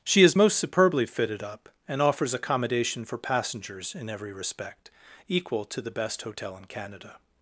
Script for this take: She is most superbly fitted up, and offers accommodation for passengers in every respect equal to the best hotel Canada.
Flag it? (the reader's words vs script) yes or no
yes